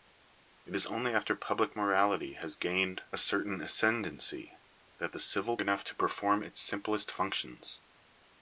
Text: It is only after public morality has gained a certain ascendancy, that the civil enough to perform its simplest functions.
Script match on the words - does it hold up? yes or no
yes